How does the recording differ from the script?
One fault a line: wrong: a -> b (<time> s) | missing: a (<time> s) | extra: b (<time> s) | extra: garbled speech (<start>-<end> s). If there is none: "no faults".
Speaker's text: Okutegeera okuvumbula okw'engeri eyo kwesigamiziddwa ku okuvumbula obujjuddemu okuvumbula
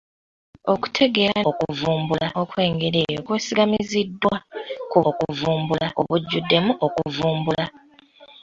no faults